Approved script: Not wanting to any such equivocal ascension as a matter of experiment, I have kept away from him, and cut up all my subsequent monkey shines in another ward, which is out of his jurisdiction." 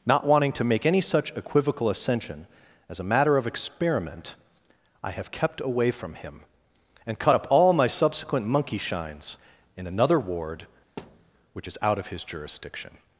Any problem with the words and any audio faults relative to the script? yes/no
yes